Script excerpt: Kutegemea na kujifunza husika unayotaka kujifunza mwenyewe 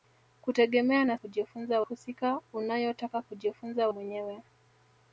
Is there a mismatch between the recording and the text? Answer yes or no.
no